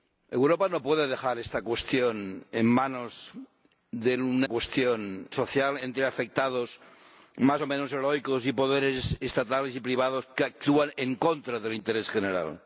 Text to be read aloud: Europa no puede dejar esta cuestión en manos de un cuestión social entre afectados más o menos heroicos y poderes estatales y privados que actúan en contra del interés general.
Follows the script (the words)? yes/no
yes